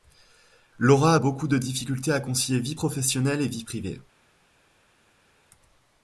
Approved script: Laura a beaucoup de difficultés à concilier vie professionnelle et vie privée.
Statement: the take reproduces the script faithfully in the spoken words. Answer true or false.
true